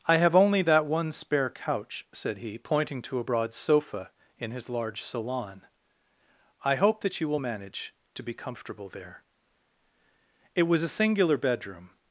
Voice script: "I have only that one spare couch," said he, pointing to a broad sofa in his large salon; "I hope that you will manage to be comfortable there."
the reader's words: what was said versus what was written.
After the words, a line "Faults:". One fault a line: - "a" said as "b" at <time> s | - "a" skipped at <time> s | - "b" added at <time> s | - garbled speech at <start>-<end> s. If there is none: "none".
"I have only that one spare couch," said he, pointing to a broad sofa in his large salon; "I hope that you will manage to be comfortable there." It was a singular bedroom
Faults:
- "It was a singular bedroom" added at 10.5 s